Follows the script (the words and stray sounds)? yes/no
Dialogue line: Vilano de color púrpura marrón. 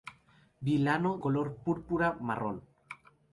no